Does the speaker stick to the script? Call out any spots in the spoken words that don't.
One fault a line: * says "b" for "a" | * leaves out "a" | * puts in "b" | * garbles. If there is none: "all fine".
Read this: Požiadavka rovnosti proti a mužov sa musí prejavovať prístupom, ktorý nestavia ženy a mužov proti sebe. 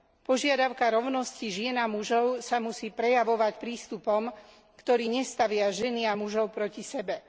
* says "žien" for "proti"